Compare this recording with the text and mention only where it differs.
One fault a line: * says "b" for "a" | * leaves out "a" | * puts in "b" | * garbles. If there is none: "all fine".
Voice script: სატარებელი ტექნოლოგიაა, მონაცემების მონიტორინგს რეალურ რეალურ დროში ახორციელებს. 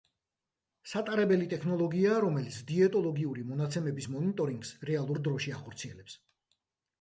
* puts in "რომელიც დიეტოლოგიური"
* leaves out "რეალურ"